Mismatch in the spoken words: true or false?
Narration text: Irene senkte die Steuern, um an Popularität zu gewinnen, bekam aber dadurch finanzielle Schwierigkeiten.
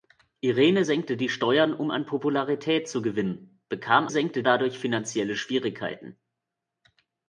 true